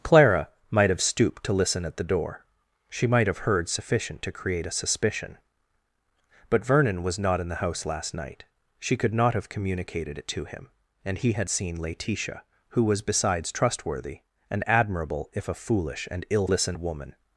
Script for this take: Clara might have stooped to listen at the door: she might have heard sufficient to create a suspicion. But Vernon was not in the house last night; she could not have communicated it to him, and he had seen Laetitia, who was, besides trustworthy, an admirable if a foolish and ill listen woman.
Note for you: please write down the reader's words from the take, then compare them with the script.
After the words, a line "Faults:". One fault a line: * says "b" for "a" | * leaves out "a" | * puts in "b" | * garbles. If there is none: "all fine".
Clara might have stooped to listen at the door: she might have heard sufficient to create a suspicion. But Vernon was not in the house last night; she could not have communicated it to him, and he had seen Laetitia, who was, besides trustworthy, an admirable if a foolish and ill listen woman.
Faults:
all fine